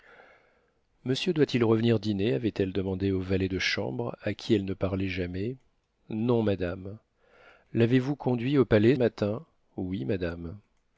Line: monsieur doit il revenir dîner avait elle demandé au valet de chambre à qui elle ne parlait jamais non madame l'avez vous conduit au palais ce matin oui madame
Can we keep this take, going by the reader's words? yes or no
no